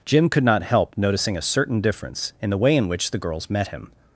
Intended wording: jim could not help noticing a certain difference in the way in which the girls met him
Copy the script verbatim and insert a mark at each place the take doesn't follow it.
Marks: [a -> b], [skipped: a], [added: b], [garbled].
jim could not help noticing a certain difference in the way in which the girls met him